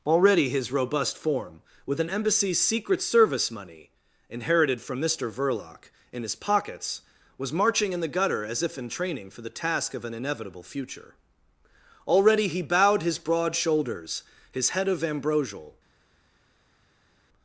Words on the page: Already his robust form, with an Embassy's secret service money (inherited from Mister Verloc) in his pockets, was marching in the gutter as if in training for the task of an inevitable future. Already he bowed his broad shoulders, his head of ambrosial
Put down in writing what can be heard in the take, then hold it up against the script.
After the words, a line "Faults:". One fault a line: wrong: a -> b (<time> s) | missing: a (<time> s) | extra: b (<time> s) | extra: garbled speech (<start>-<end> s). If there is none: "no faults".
Already his robust form, with an Embassy's secret service money (inherited from Mister Verloc) in his pockets, was marching in the gutter as if in training for the task of an inevitable future. Already he bowed his broad shoulders, his head of ambrosial
Faults:
no faults